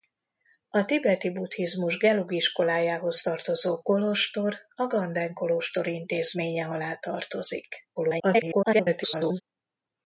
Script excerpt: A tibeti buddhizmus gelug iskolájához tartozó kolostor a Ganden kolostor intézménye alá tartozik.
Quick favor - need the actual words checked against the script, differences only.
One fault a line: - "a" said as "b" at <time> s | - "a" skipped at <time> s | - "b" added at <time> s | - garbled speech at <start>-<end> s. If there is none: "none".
- garbled speech at 8.0-9.4 s